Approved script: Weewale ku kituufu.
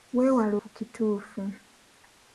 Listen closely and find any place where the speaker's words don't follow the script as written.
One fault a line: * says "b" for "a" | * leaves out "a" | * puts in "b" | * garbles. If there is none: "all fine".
all fine